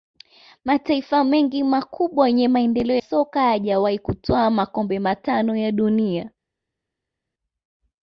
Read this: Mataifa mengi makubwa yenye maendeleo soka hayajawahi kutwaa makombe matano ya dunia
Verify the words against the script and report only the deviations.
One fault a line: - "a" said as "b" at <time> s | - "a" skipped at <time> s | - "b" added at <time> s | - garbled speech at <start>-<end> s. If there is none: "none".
none